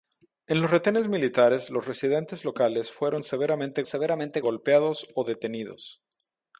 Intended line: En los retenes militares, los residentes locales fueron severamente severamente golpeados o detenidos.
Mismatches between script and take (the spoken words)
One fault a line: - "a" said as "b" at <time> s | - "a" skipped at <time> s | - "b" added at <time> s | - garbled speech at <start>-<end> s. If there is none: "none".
none